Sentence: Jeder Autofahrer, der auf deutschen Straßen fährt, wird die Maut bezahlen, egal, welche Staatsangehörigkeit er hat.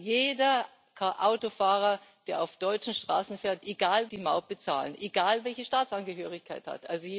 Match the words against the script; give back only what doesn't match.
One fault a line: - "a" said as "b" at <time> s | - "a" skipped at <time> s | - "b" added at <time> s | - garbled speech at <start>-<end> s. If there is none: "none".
- "wird" said as "egal" at 3.6 s